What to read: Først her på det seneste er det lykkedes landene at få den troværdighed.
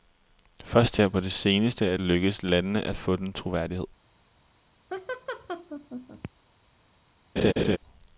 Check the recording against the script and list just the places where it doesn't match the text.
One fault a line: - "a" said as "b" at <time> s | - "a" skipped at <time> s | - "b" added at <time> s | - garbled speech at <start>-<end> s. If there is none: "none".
none